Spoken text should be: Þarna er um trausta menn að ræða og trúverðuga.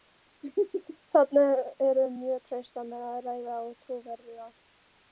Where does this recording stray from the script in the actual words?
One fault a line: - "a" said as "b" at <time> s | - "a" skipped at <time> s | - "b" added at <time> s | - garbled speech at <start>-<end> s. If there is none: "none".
- "mjög" added at 2.2 s